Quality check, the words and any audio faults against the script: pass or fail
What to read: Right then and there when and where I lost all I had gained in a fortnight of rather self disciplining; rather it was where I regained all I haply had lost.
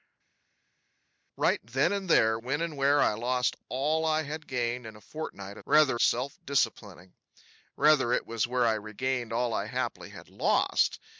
pass